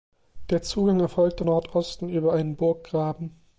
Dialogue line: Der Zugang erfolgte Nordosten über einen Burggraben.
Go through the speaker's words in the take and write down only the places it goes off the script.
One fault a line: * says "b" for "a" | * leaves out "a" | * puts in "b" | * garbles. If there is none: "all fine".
all fine